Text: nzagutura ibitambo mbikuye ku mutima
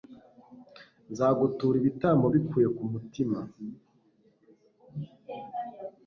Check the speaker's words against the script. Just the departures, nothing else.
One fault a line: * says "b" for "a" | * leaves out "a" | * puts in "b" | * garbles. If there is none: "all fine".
all fine